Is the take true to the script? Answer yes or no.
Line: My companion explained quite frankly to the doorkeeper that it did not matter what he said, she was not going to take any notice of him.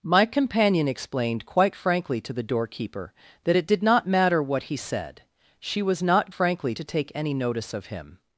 no